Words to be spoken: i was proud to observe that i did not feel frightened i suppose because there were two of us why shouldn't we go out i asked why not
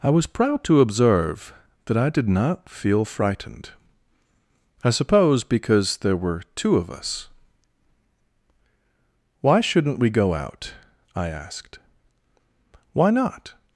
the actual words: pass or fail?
pass